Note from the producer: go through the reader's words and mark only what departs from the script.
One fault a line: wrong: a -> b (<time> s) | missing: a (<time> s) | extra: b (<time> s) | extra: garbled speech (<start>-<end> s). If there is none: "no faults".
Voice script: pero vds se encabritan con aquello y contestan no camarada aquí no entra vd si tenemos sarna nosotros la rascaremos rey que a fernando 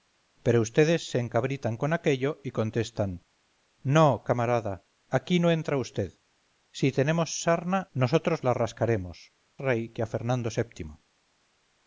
no faults